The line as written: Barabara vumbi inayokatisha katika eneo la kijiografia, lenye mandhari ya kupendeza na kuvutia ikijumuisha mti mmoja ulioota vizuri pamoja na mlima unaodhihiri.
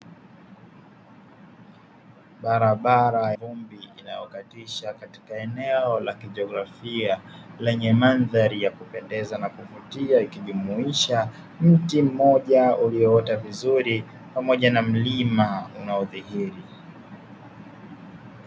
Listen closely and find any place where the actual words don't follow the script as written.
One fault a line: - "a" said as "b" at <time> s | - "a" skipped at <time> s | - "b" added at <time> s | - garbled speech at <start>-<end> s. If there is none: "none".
none